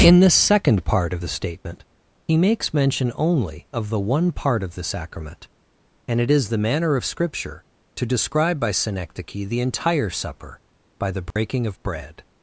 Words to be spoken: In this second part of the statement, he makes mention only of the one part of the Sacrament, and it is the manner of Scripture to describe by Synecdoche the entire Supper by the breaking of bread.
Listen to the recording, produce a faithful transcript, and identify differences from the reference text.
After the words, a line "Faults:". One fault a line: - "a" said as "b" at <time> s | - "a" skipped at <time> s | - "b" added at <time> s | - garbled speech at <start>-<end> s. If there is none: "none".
In the second part of the statement, he makes mention only of the one part of the Sacrament, and it is the manner of Scripture to describe by Synecdoche the entire Supper by the breaking of bread.
Faults:
- "this" said as "the" at 0.2 s